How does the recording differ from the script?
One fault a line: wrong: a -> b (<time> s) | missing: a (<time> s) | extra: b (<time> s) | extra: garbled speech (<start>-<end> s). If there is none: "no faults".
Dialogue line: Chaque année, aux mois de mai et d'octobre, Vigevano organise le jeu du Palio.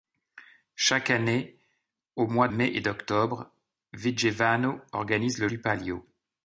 missing: de (2.5 s)
missing: jeu (5.5 s)